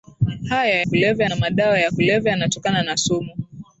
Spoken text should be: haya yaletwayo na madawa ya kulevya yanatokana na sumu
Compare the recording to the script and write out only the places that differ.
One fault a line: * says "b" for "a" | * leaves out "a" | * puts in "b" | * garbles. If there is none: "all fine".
* says "kulevya" for "yaletwayo"